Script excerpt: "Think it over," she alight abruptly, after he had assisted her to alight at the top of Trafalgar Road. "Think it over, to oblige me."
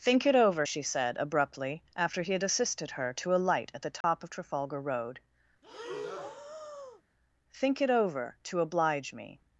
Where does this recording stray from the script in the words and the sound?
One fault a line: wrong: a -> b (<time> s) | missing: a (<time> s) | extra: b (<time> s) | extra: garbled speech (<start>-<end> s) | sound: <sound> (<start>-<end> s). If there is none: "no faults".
wrong: alight -> said (0.8 s)
sound: dropout (4.0-4.0 s)
sound: breath (5.6-7.0 s)